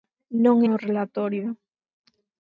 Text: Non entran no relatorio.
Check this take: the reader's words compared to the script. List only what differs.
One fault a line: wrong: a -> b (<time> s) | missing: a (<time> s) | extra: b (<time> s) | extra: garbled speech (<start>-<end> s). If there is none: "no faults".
missing: entran (0.6 s)